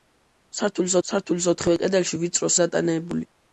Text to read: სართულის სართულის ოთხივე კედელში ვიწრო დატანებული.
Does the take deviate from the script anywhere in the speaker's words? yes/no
no